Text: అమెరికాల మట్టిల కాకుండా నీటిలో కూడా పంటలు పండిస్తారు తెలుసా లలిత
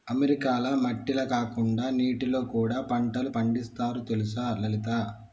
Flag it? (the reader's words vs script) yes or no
no